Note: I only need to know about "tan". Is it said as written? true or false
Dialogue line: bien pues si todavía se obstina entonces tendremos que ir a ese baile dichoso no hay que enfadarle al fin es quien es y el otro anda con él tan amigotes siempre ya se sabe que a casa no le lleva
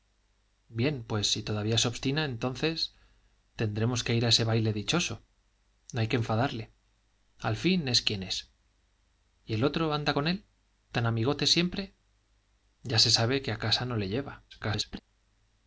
true